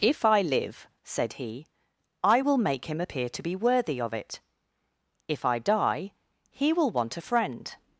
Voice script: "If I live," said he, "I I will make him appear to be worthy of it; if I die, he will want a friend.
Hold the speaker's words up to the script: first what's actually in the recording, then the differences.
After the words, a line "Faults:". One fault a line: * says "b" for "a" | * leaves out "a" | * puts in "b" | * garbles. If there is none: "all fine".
"If I live," said he, "I will make him appear to be worthy of it; if I die, he will want a friend.
Faults:
* leaves out "I"